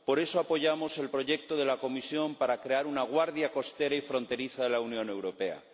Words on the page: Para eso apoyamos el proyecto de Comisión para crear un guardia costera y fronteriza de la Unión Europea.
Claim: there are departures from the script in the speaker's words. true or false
true